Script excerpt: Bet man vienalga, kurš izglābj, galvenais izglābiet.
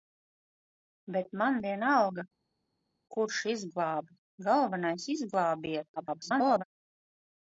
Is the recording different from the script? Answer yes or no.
yes